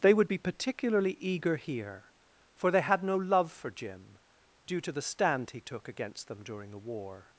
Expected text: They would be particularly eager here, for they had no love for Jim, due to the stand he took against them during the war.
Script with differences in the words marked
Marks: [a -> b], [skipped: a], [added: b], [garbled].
They would be particularly eager here, for they had no love for Jim, due to the stand he took against them during the war.